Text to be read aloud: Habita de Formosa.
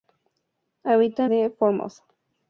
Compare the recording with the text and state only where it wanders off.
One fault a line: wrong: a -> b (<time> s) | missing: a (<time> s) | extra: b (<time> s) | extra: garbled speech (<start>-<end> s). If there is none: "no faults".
no faults